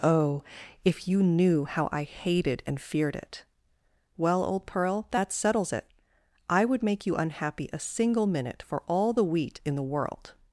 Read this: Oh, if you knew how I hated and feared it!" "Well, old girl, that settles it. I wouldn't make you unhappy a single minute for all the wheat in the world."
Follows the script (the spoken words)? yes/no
no